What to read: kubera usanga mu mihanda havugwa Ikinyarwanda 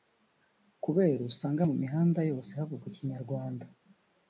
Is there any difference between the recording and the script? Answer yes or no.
yes